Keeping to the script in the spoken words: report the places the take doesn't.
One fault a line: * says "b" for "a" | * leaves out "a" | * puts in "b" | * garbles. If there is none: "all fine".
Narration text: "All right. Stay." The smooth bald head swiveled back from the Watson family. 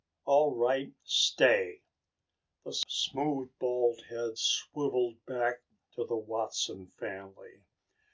* says "to" for "from"